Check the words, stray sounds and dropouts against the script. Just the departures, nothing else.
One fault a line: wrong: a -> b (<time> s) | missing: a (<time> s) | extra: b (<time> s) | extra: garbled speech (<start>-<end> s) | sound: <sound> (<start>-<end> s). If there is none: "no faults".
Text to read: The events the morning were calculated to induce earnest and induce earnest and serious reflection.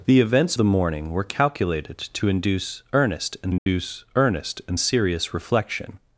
sound: dropout (3.6-3.7 s)